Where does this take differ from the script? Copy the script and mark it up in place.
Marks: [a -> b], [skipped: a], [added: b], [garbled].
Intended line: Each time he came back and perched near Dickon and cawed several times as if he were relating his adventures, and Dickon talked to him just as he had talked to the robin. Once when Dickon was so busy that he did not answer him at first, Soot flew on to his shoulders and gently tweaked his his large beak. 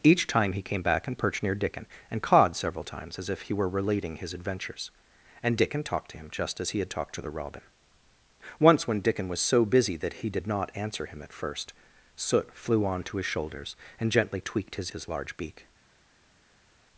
Each time he came back and perched near Dickon and cawed several times as if he were relating his adventures, and Dickon talked to him just as he had talked to the robin. Once when Dickon was so busy that he did not answer him at first, Soot flew on to his shoulders and gently tweaked his his large beak.